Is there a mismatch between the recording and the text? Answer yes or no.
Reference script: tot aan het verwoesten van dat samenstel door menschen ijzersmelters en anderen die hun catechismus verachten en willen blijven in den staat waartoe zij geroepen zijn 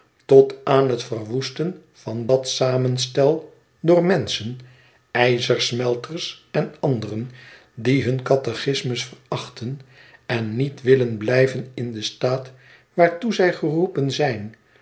yes